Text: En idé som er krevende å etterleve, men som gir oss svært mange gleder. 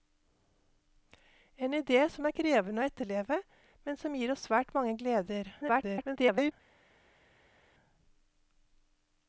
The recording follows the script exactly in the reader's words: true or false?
false